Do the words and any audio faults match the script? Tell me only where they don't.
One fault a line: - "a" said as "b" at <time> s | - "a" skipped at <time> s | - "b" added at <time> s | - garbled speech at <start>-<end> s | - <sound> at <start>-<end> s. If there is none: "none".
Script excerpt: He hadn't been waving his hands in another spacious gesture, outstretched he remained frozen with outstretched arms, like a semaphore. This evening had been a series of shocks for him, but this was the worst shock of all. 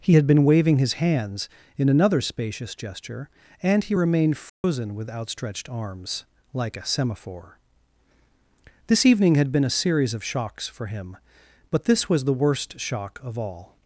- "hadn't" said as "had" at 0.1 s
- "outstretched" said as "and" at 3.6 s
- dropout at 4.5-4.6 s